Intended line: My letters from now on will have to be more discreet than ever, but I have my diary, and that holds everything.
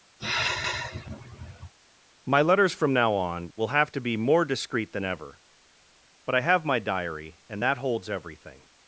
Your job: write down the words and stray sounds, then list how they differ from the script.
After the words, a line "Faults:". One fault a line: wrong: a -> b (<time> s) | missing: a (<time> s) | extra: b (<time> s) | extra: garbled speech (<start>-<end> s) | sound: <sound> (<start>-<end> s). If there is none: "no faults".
My letters from now on will have to be more discreet than ever, but I have my diary, and that holds everything.
Faults:
sound: sigh (0.2-1.7 s)